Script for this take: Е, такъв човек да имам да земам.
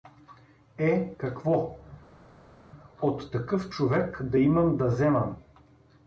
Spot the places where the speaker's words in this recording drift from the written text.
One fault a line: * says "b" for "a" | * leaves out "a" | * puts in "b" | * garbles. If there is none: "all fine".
* puts in "какво от"